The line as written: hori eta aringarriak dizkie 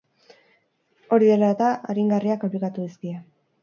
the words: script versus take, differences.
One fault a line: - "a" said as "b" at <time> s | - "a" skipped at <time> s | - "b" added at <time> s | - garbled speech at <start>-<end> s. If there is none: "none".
- "dela" added at 1.3 s
- "aplikatu" added at 2.5 s